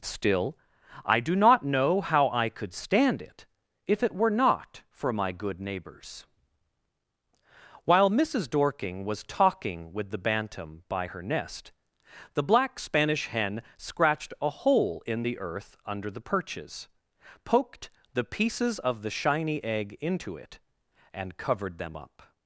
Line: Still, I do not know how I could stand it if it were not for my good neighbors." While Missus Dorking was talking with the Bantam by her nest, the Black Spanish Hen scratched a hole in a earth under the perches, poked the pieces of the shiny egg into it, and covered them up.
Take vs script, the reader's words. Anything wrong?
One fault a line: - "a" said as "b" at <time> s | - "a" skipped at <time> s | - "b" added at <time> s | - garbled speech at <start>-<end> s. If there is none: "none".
- "a" said as "the" at 15.2 s